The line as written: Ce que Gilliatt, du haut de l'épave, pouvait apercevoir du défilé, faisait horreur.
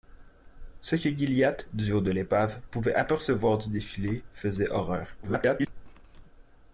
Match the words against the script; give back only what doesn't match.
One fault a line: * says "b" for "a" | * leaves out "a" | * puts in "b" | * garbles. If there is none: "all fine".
* garbles